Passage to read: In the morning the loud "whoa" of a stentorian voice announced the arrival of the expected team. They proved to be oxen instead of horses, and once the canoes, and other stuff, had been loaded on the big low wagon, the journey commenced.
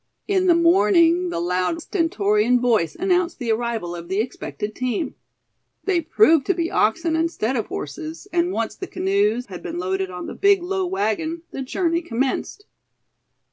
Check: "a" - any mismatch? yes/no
yes